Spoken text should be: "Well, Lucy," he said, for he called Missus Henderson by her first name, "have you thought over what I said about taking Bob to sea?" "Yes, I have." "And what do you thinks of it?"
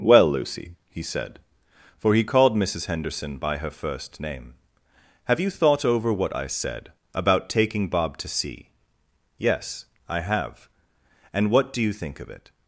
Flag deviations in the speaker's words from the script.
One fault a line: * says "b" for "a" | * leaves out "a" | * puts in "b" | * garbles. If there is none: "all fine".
* says "think" for "thinks"